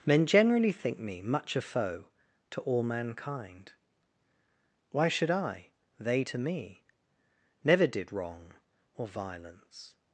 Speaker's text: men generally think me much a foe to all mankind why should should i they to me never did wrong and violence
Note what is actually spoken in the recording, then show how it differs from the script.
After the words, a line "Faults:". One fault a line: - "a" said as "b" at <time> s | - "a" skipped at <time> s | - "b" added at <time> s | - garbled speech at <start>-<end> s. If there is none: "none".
men generally think me much a foe to all mankind why should i they to me never did wrong or violence
Faults:
- "should" skipped at 5.3 s
- "and" said as "or" at 9.0 s